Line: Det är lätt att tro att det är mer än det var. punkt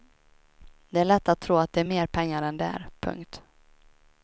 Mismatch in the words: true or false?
true